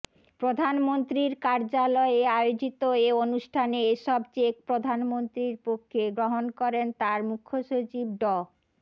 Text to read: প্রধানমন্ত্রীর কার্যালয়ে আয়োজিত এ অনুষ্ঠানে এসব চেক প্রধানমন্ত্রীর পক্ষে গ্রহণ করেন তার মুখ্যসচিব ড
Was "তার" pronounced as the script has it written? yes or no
yes